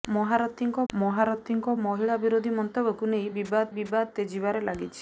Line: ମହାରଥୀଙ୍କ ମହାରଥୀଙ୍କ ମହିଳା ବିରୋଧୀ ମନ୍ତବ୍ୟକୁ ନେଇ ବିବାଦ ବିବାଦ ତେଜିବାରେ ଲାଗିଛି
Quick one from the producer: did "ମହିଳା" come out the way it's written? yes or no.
yes